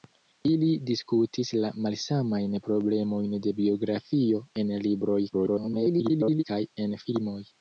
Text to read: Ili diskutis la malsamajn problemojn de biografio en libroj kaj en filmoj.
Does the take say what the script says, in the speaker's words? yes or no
no